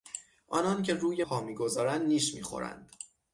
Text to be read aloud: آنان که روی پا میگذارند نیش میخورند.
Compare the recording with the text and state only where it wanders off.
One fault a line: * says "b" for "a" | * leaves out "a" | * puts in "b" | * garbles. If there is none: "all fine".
all fine